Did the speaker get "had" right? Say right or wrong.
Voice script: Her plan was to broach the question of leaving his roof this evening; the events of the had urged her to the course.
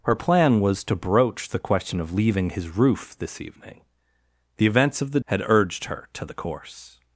right